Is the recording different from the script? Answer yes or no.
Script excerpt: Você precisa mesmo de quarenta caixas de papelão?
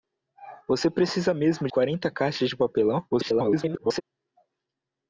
yes